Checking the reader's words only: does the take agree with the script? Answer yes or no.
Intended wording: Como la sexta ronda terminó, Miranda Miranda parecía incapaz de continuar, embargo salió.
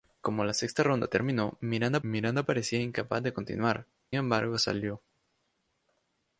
yes